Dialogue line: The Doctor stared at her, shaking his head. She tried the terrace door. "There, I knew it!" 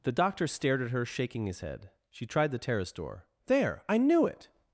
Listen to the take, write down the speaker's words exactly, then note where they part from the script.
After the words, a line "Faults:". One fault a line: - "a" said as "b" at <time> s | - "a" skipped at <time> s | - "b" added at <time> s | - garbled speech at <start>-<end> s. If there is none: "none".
The Doctor stared at her, shaking his head. She tried the terrace door. "There, I knew it!"
Faults:
none